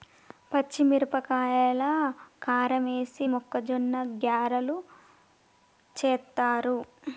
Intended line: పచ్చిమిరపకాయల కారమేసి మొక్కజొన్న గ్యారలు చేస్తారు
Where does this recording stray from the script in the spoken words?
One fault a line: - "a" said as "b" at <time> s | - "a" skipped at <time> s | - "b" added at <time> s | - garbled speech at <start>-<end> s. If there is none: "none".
none